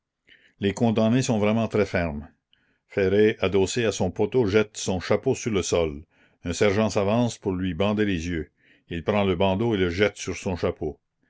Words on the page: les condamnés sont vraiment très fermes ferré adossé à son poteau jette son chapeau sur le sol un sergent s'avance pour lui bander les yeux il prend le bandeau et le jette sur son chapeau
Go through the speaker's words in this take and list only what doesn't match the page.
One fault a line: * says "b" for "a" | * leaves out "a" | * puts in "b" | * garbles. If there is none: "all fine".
all fine